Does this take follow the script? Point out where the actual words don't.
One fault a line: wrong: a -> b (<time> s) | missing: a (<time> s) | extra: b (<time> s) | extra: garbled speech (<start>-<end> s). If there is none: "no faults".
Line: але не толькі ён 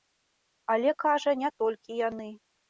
extra: кажа (1.0 s)
wrong: ён -> яны (2.1 s)